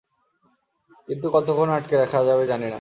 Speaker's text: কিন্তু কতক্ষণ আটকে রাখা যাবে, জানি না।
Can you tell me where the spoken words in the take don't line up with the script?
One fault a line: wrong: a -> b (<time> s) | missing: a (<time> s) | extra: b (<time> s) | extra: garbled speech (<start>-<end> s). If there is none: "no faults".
no faults